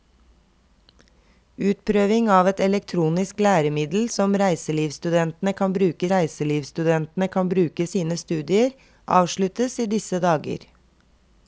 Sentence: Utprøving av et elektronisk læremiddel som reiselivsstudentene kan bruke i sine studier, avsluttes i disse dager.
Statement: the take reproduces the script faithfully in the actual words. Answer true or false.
false